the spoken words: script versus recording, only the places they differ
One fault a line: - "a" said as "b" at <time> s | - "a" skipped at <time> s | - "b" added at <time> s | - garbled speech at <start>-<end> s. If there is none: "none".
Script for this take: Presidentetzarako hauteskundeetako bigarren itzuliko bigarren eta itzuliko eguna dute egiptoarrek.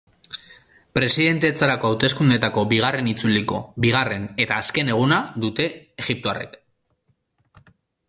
- "itzuliko" said as "azken" at 4.7 s